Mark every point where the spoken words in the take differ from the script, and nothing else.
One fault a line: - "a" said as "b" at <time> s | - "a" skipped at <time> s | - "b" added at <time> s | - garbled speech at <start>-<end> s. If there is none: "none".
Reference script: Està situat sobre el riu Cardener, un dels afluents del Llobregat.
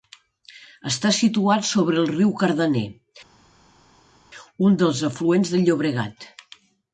none